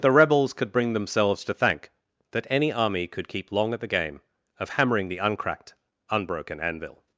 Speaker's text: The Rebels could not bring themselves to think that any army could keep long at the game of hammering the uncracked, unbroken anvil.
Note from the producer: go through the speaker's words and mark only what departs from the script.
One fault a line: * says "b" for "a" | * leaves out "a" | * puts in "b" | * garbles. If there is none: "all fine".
* leaves out "not"
* says "thank" for "think"